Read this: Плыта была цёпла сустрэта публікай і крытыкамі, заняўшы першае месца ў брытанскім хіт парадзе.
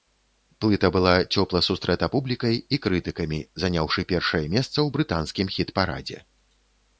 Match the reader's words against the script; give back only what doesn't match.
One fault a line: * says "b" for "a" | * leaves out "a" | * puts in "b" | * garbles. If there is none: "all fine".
all fine